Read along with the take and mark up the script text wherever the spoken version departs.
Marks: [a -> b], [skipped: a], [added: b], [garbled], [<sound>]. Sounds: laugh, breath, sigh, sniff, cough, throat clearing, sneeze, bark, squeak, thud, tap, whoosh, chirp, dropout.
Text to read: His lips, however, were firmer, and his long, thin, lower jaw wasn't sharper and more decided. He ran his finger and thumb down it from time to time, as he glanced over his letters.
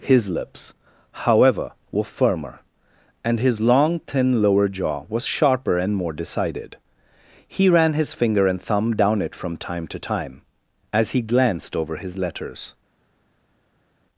His lips, however, were firmer, and his long, thin, lower jaw [wasn't -> was] sharper and more decided. He ran his finger and thumb down it from time to time, as he glanced over his letters.